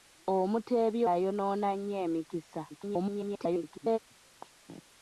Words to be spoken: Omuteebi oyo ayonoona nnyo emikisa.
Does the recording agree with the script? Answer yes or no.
no